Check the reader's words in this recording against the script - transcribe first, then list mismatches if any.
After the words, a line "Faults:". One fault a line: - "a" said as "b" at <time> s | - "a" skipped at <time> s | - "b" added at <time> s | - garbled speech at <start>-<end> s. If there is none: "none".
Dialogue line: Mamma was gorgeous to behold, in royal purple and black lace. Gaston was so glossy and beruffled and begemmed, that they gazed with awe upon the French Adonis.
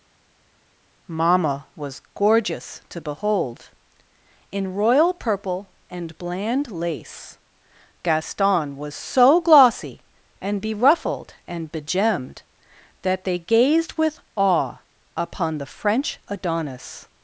Mamma was gorgeous to behold, in royal purple and bland lace. Gaston was so glossy and beruffled and begemmed, that they gazed with awe upon the French Adonis.
Faults:
- "black" said as "bland" at 6.2 s